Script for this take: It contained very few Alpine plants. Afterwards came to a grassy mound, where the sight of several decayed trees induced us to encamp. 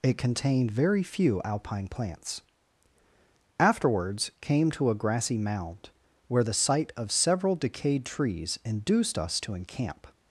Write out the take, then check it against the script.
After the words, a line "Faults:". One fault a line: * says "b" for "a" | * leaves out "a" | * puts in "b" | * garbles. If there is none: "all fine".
It contained very few Alpine plants. Afterwards came to a grassy mound, where the sight of several decayed trees induced us to encamp.
Faults:
all fine